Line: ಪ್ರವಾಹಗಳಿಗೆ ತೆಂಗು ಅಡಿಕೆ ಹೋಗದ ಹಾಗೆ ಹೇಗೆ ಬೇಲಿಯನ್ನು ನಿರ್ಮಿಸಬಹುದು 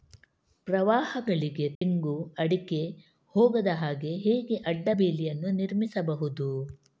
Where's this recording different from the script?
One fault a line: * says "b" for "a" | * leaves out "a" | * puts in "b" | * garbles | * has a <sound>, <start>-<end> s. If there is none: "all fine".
* has a dropout, 1.8-1.8 s
* puts in "ಅಡ್ಡ"